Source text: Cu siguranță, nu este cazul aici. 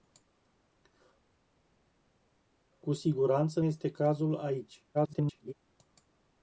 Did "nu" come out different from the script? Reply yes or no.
yes